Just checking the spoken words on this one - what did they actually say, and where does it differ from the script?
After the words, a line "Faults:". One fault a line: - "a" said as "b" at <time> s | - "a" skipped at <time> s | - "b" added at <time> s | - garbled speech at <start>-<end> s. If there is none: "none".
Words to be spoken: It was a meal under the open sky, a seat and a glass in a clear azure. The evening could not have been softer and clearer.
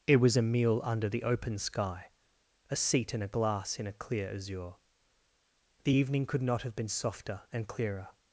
It was a meal under the open sky, a seat and a glass in a clear azure. The evening could not have been softer and clearer.
Faults:
none